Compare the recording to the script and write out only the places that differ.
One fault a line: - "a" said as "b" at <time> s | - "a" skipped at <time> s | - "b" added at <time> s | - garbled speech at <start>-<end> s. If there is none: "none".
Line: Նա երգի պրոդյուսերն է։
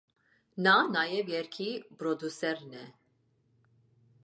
- "նաև" added at 0.9 s